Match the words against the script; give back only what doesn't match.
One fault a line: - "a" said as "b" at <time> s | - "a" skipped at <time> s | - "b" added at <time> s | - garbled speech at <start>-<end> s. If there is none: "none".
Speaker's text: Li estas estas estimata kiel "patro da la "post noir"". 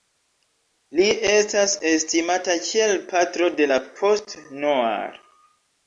- "estas" skipped at 1.8 s
- "da" said as "de" at 3.6 s